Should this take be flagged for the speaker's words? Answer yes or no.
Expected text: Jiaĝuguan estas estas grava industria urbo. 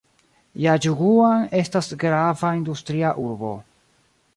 yes